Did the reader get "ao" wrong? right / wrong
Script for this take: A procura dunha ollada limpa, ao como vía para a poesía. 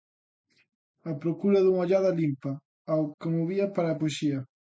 right